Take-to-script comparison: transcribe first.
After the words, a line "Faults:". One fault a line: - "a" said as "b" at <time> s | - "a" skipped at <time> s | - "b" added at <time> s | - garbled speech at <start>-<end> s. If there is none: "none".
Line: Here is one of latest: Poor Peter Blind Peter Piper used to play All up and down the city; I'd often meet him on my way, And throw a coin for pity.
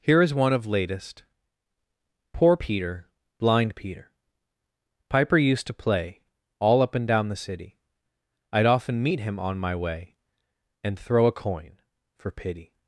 Here is one of latest: Poor Peter Blind Peter Piper used to play All up and down the city; I'd often meet him on my way, And throw a coin for pity.
Faults:
none